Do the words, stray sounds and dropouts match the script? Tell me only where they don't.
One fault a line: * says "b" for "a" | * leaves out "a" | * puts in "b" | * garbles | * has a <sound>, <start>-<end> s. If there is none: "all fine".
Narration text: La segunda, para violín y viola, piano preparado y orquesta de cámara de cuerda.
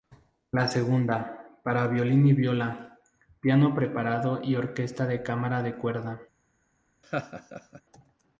* has a laugh, 7.0-7.8 s